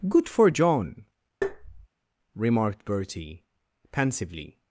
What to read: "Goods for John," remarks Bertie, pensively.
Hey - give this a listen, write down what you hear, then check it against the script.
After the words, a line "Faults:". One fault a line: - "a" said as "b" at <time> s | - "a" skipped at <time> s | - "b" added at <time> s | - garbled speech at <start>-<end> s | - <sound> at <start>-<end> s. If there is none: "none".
"Good for John," remarked Bertie, pensively.
Faults:
- "Goods" said as "Good" at 0.1 s
- tap at 1.4-1.9 s
- "remarks" said as "remarked" at 2.3 s